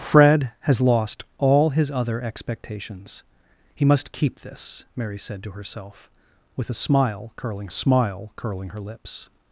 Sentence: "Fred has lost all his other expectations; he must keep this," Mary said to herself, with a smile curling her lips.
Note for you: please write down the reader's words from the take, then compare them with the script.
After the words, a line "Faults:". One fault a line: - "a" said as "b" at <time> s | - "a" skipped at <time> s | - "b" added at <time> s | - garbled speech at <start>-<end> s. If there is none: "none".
"Fred has lost all his other expectations; he must keep this," Mary said to herself, with a smile curling smile curling her lips.
Faults:
- "smile curling" added at 7.7 s